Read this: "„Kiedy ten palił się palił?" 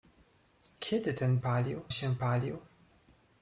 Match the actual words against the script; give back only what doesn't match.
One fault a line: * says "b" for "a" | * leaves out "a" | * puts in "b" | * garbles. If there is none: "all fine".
all fine